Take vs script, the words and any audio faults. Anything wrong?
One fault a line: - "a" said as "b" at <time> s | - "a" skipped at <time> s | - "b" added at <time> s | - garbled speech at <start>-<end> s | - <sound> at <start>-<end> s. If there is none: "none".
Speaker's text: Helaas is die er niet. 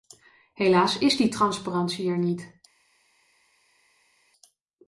- "transparantie" added at 1.3 s